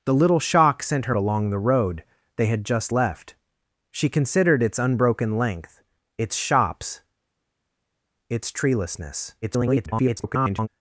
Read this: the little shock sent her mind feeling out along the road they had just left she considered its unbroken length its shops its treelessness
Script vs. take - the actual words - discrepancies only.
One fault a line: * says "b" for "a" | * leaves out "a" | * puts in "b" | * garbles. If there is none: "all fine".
* leaves out "mind feeling out"
* garbles